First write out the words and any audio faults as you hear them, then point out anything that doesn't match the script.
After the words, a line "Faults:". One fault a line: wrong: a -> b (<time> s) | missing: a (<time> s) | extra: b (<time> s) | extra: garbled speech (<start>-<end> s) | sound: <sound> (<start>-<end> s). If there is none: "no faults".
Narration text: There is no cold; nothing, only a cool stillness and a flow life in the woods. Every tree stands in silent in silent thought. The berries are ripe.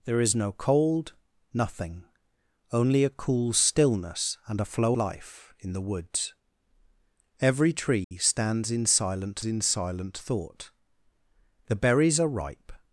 There is no cold; nothing, only a cool stillness and a flow life in the woods. Every tree stands in silent in silent thought. The berries are ripe.
Faults:
sound: dropout (8.0-8.1 s)